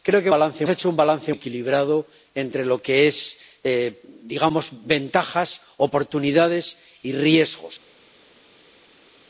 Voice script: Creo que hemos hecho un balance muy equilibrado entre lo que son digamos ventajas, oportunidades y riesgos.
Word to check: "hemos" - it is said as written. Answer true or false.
false